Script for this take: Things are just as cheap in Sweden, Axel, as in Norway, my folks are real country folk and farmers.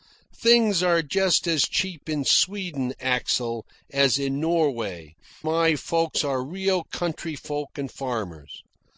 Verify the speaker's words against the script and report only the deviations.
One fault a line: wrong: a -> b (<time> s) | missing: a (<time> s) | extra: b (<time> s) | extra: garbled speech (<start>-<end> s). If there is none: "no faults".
no faults